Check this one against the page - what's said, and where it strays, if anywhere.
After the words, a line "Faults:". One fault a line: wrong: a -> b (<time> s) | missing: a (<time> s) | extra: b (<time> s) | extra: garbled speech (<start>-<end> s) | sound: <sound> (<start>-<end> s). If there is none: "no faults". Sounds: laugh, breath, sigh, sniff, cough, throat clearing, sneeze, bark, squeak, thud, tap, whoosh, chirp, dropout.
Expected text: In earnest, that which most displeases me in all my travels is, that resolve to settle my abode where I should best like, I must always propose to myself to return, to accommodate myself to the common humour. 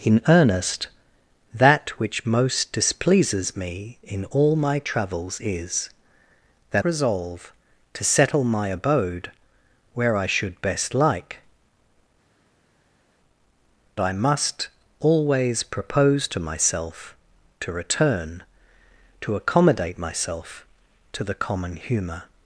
In earnest, that which most displeases me in all my travels is, that resolve to settle my abode where I should best like, I must always propose to myself to return, to accommodate myself to the common humour.
Faults:
no faults